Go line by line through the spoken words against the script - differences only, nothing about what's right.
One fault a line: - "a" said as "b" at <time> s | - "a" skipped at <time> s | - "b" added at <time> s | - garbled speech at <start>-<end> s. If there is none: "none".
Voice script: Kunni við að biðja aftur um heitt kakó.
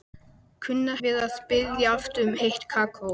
none